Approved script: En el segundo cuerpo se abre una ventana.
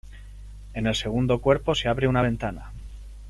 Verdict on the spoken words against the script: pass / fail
pass